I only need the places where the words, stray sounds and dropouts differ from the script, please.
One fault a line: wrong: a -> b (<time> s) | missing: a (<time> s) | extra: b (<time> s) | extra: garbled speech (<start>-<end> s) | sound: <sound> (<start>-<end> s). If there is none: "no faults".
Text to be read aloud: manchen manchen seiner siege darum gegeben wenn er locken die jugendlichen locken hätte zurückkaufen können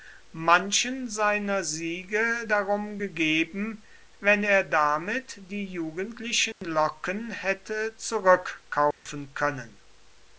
missing: manchen (1.1 s)
wrong: locken -> damit (4.6 s)
sound: dropout (6.5-6.6 s)
sound: dropout (8.9-9.1 s)